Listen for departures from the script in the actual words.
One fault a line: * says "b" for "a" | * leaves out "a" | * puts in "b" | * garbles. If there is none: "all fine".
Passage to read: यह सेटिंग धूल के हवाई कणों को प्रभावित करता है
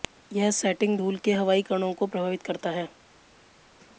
all fine